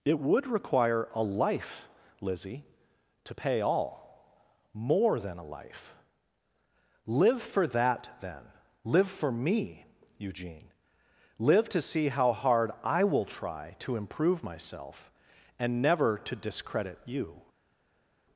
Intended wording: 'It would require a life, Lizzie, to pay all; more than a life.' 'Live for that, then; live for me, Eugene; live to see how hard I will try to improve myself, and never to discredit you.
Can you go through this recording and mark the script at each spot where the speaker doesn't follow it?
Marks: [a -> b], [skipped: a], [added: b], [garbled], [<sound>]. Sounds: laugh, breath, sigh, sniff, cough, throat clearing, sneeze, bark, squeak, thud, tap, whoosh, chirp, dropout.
'It would require a life, Lizzie, to pay all; more than a life.' 'Live for that, then; live for me, Eugene; live to see how hard I will try to improve myself, and never to discredit you.